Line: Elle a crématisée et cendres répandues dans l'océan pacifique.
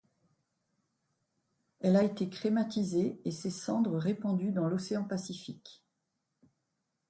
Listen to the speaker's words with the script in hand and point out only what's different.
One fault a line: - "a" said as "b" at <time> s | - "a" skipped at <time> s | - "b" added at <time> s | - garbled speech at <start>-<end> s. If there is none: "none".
- "été" added at 2.0 s
- "ses" added at 3.3 s